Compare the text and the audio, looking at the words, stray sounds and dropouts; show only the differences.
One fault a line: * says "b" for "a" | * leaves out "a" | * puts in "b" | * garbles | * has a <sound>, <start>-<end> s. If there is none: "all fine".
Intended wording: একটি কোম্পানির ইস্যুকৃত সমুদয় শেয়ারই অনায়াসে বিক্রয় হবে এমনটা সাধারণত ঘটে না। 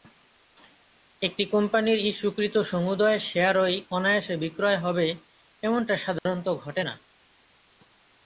* has a dropout, 6.2-6.3 s